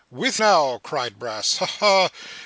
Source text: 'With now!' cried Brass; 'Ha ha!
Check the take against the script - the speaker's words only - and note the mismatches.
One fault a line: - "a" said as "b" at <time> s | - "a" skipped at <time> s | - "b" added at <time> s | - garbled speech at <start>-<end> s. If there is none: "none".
none